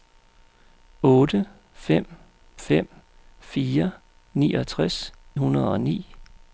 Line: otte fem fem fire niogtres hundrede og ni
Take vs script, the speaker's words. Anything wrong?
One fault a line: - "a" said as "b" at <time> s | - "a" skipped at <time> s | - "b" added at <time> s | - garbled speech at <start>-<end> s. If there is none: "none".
none